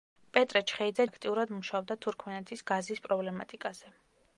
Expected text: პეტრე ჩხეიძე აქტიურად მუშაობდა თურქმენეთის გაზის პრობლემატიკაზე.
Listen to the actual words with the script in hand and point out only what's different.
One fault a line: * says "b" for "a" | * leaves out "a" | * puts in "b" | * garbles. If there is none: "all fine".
all fine